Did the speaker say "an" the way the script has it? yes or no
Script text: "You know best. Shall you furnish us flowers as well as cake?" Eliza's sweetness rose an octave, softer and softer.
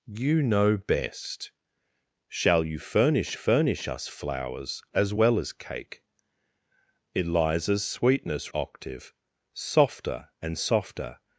no